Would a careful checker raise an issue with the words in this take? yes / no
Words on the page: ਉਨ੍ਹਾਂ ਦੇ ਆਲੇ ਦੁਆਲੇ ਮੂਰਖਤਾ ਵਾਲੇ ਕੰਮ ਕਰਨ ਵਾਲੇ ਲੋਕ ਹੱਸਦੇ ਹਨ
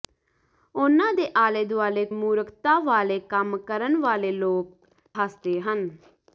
no